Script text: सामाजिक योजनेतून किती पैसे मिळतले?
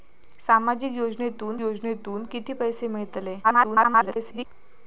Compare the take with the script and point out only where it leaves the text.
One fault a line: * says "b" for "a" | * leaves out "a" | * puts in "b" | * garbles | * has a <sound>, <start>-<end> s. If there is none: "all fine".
* puts in "योजनेतून"
* garbles